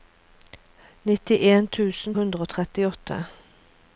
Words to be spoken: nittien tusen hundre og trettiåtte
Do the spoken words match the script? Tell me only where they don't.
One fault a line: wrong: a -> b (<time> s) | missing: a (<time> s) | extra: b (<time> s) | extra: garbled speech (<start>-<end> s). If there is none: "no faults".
no faults